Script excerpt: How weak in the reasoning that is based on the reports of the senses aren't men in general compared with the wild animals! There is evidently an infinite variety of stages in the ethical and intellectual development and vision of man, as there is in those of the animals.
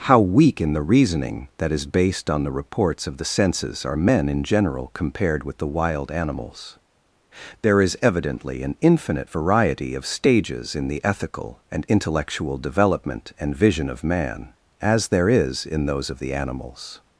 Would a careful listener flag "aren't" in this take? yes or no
yes